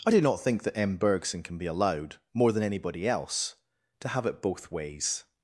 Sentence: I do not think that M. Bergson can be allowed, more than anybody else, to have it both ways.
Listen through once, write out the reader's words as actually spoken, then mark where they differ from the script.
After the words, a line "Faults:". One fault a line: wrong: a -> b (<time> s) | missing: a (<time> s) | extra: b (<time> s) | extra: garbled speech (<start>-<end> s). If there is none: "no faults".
I do not think that M. Bergson can be allowed, more than anybody else, to have it both ways.
Faults:
no faults